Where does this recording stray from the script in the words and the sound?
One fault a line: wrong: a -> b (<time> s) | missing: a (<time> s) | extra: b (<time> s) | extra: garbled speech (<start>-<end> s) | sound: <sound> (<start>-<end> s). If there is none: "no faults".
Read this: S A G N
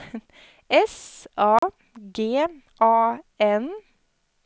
sound: dropout (1.6-1.6 s)
extra: A (2.8 s)